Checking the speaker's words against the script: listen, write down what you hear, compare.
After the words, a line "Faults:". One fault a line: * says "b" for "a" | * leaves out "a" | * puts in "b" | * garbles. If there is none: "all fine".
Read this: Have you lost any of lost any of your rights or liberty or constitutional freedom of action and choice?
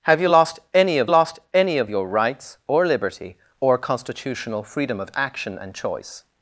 Have you lost any of lost any of your rights or liberty or constitutional freedom of action and choice?
Faults:
all fine